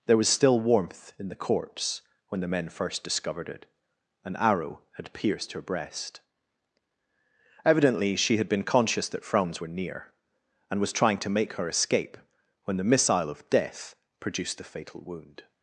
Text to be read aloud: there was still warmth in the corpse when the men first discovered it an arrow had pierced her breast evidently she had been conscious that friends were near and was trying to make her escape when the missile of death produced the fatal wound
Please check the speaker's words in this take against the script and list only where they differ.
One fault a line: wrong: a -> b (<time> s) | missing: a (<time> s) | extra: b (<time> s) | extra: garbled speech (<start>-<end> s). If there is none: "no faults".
wrong: friends -> franz (9.2 s)